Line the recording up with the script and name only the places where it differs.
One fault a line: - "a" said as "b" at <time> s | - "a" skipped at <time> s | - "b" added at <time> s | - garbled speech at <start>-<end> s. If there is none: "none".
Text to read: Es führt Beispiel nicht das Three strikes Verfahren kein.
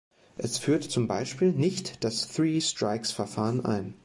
- "zum" added at 0.8 s
- "kein" said as "ein" at 3.6 s